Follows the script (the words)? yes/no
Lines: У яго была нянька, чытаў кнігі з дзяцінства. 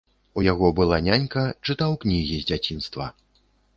yes